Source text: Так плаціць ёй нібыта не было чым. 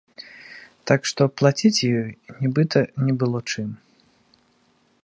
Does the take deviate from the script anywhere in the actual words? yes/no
yes